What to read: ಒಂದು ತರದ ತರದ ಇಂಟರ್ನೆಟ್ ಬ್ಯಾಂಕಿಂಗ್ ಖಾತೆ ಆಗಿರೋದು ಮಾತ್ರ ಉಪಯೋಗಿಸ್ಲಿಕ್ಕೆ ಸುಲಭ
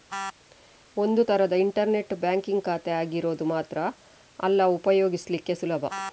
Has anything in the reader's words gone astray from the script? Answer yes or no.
yes